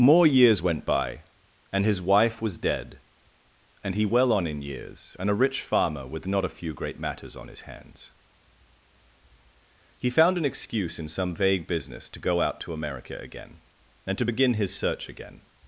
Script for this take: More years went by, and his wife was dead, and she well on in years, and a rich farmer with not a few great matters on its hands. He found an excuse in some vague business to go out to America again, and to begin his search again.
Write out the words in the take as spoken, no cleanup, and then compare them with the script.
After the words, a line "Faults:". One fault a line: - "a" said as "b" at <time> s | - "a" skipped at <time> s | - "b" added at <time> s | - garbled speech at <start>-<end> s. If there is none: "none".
More years went by, and his wife was dead, and he well on in years, and a rich farmer with not a few great matters on his hands. He found an excuse in some vague business to go out to America again, and to begin his search again.
Faults:
- "she" said as "he" at 3.9 s
- "its" said as "his" at 7.5 s